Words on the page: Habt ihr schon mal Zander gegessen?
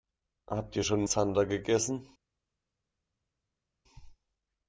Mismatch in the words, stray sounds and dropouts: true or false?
true